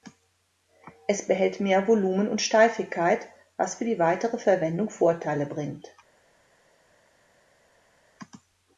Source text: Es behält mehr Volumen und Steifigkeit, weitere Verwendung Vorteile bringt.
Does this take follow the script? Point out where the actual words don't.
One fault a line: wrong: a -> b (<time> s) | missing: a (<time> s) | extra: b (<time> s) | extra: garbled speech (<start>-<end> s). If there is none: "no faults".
extra: was für die (3.5 s)